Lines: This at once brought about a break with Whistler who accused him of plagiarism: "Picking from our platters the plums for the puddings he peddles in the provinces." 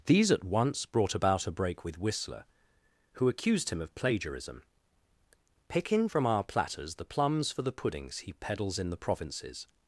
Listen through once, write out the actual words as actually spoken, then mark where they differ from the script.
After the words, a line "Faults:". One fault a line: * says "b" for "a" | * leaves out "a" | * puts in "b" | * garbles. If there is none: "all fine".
These at once brought about a break with Whistler who accused him of plagiarism: "Picking from our platters the plums for the puddings he peddles in the provinces."
Faults:
* says "These" for "This"